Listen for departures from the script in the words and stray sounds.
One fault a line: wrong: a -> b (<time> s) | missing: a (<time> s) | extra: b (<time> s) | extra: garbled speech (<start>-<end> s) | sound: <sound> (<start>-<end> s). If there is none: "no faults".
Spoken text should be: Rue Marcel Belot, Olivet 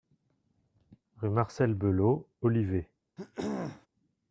sound: throat clearing (3.2-3.9 s)